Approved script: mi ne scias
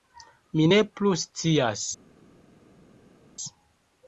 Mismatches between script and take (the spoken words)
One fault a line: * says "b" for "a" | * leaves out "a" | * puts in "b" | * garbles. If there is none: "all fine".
* puts in "plu"